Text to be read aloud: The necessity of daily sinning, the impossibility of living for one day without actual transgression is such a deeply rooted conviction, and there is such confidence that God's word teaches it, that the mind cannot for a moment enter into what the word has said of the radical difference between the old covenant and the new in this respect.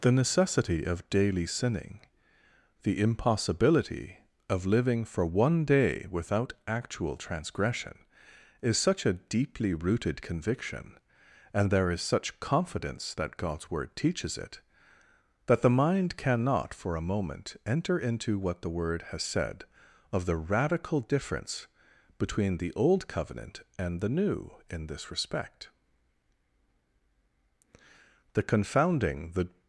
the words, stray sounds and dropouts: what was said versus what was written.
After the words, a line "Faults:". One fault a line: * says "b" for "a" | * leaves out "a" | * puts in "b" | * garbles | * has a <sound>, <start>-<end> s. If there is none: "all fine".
The necessity of daily sinning, the impossibility of living for one day without actual transgression is such a deeply rooted conviction, and there is such confidence that God's word teaches it, that the mind cannot for a moment enter into what the word has said of the radical difference between the old covenant and the new in this respect. The confounding the
Faults:
* puts in "The confounding the"